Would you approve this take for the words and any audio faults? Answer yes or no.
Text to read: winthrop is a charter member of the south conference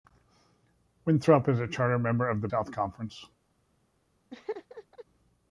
no